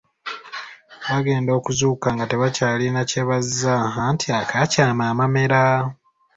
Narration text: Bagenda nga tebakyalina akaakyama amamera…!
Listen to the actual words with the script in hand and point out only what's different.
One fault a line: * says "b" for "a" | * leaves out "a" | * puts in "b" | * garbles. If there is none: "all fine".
* puts in "okuzuukuka"
* puts in "kye bazza anti"